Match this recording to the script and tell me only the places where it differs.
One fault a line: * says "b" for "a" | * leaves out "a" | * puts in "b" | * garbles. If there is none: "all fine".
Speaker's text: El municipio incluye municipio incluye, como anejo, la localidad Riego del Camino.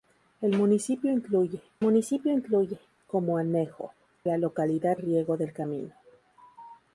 all fine